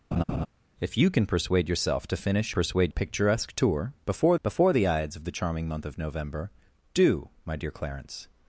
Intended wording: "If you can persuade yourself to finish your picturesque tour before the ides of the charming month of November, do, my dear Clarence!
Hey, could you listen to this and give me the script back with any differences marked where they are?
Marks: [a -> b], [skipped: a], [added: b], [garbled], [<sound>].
[laugh] "If you can persuade yourself to finish [your -> persuade] picturesque tour before [added: before] the ides of the charming month of November, do, my dear Clarence!